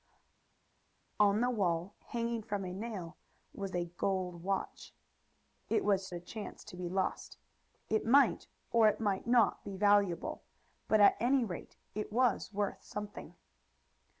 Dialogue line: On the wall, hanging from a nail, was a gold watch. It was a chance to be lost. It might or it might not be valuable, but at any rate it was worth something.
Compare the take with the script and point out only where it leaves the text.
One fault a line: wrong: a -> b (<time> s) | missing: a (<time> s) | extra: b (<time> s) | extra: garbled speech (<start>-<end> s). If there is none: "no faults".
no faults